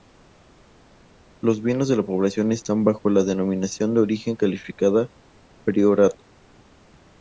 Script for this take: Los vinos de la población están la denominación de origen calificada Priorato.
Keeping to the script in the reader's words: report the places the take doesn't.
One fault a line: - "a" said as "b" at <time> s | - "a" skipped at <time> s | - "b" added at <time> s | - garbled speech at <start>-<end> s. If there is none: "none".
- "bajo" added at 2.8 s